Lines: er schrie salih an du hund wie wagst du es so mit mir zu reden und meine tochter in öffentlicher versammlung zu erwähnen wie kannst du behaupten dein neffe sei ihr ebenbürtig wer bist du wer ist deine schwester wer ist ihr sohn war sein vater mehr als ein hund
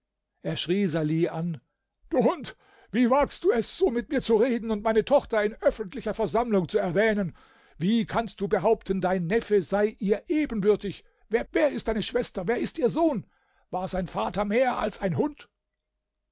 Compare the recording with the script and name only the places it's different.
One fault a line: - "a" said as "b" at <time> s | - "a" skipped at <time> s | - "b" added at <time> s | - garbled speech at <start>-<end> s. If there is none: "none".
- "bist du" skipped at 11.4 s